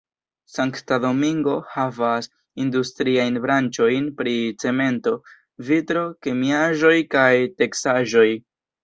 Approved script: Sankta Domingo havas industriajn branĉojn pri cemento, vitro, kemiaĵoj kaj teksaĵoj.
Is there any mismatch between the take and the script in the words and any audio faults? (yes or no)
no